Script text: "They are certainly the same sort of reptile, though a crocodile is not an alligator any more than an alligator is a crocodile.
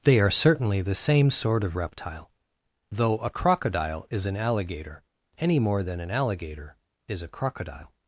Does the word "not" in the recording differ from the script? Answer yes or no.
yes